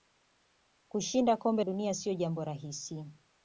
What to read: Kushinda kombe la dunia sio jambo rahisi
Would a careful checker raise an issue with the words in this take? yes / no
yes